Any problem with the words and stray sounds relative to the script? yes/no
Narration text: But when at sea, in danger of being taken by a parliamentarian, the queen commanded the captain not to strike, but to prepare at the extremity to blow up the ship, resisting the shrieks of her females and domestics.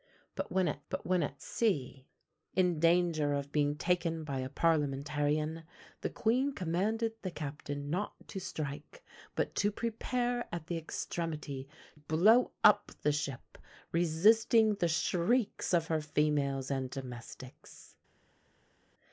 yes